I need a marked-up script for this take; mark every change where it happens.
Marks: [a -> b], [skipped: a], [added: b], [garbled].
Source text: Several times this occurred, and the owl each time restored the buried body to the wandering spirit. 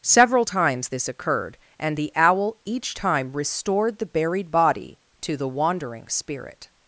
Several times this occurred, and the owl each time restored the buried body to the wandering spirit.